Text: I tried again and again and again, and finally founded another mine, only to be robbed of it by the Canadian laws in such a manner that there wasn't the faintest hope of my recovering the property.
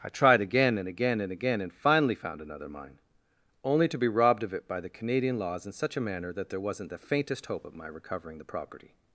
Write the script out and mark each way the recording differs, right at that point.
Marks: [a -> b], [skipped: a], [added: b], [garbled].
I tried again and again and again, and finally [founded -> found] another mine, only to be robbed of it by the Canadian laws in such a manner that there wasn't the faintest hope of my recovering the property.